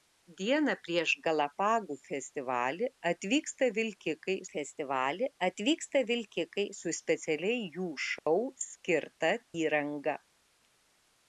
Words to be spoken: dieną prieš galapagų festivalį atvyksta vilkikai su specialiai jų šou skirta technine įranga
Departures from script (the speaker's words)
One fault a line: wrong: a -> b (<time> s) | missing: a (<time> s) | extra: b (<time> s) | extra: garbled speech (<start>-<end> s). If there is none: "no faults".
extra: festivalį atvyksta vilkikai (4.5 s)
missing: technine (9.3 s)